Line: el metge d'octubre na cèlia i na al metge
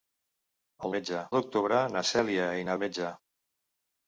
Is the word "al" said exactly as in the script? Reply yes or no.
yes